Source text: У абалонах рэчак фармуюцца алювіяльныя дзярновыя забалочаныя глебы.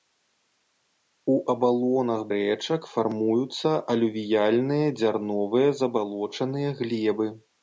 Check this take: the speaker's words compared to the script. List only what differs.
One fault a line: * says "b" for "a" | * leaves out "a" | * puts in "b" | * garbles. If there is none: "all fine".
all fine